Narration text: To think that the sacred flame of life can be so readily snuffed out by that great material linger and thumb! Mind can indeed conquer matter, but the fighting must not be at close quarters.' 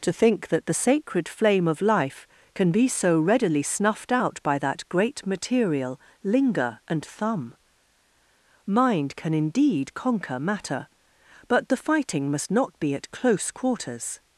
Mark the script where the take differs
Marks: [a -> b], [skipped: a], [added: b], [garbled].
To think that the sacred flame of life can be so readily snuffed out by that great material linger and thumb! Mind can indeed conquer matter, but the fighting must not be at close quarters.'